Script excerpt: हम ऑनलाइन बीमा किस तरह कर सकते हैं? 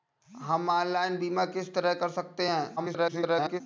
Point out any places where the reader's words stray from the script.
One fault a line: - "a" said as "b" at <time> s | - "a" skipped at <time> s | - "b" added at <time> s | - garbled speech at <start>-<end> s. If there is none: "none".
- garbled speech at 2.8-3.6 s